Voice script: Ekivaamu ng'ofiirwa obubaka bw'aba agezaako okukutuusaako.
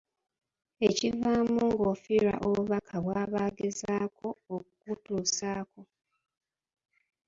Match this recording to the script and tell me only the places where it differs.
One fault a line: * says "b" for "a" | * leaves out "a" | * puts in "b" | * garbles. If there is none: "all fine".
all fine